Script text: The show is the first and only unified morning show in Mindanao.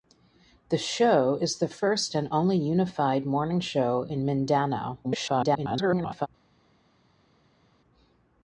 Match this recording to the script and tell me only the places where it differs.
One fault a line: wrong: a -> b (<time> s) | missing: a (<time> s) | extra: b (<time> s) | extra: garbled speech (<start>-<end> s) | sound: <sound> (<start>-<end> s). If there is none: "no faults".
extra: garbled speech (5.0-6.3 s)